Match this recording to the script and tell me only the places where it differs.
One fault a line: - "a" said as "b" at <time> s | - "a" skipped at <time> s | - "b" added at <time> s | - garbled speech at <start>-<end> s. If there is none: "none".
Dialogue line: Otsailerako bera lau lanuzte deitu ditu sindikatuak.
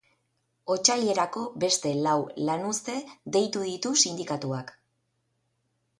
- "bera" said as "beste" at 1.6 s